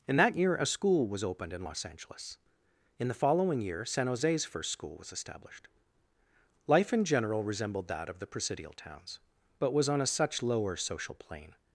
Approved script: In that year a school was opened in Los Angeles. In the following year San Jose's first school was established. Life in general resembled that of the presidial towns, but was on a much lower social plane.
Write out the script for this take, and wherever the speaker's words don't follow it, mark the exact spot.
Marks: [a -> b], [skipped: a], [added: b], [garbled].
In that year a school was opened in Los Angeles. In the following year San Jose's first school was established. Life in general resembled that of the presidial towns, but was on a [much -> such] lower social plane.